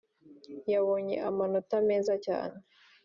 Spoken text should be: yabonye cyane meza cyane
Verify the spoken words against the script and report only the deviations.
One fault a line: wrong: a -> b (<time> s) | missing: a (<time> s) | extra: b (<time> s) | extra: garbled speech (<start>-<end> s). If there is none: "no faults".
wrong: cyane -> amanota (1.3 s)